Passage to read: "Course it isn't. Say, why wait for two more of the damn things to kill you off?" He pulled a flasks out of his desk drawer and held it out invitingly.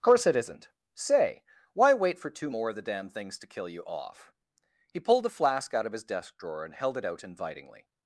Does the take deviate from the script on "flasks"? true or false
true